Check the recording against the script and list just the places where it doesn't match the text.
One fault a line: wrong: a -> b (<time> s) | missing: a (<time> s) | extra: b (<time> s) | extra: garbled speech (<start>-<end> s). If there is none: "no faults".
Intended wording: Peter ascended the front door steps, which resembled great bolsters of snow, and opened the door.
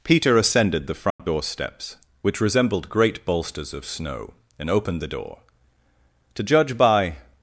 extra: To judge by (6.3 s)